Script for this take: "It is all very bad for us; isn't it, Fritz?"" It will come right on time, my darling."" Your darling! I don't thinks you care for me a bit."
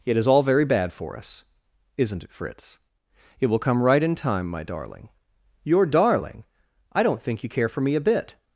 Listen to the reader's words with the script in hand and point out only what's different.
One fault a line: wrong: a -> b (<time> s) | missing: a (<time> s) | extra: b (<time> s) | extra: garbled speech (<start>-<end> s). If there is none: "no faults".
wrong: on -> in (4.0 s)
wrong: thinks -> think (7.2 s)